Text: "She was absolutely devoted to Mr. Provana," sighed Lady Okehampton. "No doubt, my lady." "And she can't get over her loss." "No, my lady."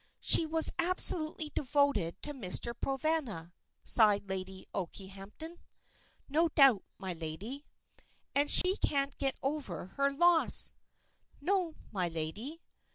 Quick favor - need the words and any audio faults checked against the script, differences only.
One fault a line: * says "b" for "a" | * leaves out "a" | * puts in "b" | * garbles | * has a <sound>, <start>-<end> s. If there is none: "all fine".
* has a dropout, 8.6-8.6 s